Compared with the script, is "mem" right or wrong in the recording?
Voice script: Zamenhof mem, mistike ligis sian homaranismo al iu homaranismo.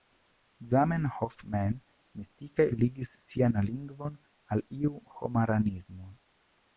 right